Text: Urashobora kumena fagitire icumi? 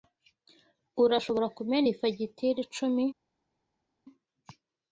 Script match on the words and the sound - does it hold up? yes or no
no